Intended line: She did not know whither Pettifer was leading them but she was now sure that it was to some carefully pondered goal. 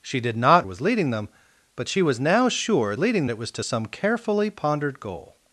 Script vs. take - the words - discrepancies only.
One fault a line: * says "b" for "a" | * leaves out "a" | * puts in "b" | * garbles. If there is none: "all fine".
* leaves out "know whither Pettifer"
* says "leading" for "that"